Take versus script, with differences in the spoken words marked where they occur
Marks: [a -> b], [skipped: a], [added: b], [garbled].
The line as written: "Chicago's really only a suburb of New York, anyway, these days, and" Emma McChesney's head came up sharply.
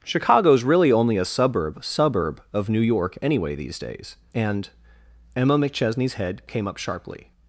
"Chicago's really only a suburb [added: suburb] of New York, anyway, these days, and" Emma McChesney's head came up sharply.